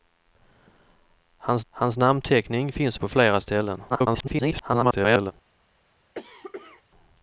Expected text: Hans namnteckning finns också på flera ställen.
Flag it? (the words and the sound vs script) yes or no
yes